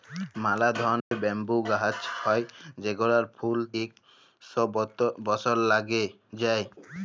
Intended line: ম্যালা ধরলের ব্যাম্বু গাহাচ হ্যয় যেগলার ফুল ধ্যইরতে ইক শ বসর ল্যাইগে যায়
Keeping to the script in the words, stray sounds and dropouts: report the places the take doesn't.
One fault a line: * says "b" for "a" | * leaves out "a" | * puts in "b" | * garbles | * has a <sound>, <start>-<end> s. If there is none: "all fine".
* has a dropout, 1.0-1.1 s
* leaves out "ধ্যইরতে"